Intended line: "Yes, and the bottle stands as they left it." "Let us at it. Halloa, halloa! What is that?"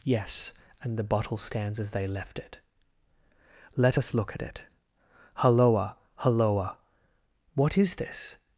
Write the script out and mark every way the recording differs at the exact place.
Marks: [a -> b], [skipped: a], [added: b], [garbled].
"Yes, and the bottle stands as they left it." "Let us [added: look] at it. Halloa, halloa! What is [that?" -> this]